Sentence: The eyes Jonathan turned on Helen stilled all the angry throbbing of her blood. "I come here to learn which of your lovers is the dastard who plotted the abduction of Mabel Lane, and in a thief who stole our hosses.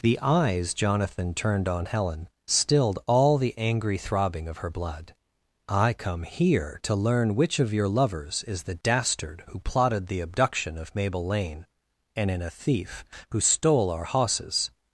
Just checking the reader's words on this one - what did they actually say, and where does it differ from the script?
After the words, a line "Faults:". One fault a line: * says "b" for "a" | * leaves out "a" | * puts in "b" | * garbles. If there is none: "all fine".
The eyes Jonathan turned on Helen stilled all the angry throbbing of her blood. "I come here to learn which of your lovers is the dastard who plotted the abduction of Mabel Lane, and in a thief who stole our hosses.
Faults:
all fine